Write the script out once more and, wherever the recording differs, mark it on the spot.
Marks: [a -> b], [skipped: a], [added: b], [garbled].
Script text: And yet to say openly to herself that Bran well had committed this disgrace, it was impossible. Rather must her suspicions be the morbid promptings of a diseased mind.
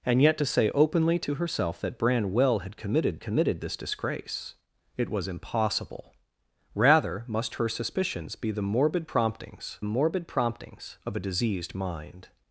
And yet to say openly to herself that Bran well had committed [added: committed] this disgrace, it was impossible. Rather must her suspicions be the morbid promptings [added: morbid promptings] of a diseased mind.